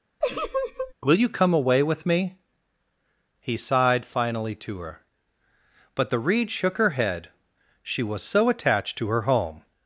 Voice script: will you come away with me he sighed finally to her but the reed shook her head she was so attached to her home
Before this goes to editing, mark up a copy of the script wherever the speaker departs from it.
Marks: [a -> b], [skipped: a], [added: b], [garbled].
will you come away with me he sighed finally to her but the reed shook her head she was so attached to her home